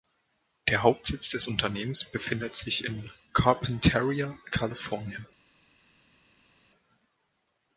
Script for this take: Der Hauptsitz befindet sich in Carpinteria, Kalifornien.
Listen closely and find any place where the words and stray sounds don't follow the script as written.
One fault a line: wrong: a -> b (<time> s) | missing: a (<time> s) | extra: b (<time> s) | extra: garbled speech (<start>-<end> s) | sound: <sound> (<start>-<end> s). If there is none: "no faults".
extra: des Unternehmens (1.3 s)